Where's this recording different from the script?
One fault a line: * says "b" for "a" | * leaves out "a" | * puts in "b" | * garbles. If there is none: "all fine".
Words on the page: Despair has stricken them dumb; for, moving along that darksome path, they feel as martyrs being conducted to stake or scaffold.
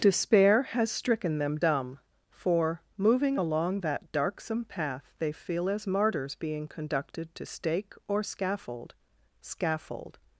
* puts in "scaffold"